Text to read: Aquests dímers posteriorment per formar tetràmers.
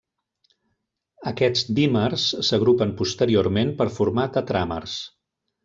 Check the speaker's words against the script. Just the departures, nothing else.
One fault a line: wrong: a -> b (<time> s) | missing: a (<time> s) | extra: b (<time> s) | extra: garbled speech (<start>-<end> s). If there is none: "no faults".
extra: s'agrupen (2.5 s)